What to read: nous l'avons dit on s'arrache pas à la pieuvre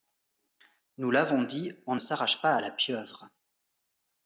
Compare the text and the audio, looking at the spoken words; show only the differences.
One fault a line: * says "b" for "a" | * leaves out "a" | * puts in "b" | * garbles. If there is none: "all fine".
all fine